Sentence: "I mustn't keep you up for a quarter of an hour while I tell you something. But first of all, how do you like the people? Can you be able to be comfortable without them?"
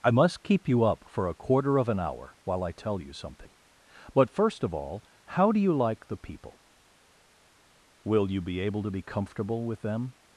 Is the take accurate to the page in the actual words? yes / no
no